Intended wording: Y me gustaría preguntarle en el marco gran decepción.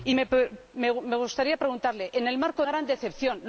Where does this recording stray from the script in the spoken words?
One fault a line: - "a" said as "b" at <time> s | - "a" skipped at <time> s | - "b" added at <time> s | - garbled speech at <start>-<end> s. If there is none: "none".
none